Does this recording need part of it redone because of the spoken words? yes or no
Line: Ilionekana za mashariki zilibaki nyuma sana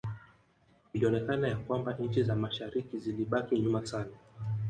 yes